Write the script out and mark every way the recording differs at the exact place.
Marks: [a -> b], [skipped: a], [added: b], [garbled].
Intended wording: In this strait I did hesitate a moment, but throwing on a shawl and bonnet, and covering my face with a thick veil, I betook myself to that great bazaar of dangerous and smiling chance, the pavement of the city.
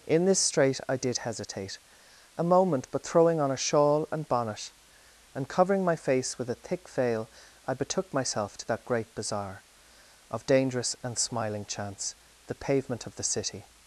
In this strait I did hesitate a moment, but throwing on a shawl and bonnet, and covering my face with a thick veil, I betook myself to that great bazaar of dangerous and smiling chance, the pavement of the city.